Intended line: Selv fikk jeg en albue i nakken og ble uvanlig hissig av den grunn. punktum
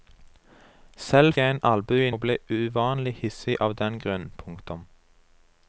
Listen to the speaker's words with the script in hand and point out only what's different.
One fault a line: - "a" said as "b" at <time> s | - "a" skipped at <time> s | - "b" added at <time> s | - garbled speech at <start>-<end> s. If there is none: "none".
- "fikk" skipped at 1.3 s
- "nakken" skipped at 2.1 s